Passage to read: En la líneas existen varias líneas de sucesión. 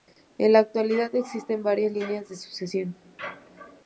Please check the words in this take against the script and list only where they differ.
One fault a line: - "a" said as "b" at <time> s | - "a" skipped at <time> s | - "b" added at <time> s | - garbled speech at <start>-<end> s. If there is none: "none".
- "líneas" said as "actualidad" at 0.6 s